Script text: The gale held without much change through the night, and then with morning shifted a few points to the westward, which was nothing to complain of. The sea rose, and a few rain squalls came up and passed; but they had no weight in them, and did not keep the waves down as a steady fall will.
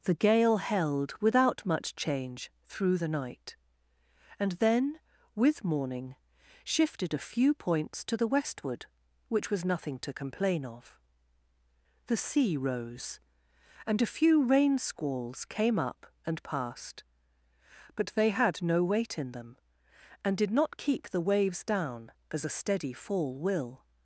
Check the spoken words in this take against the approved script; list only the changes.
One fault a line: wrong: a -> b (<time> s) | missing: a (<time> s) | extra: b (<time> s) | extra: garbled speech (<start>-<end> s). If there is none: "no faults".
no faults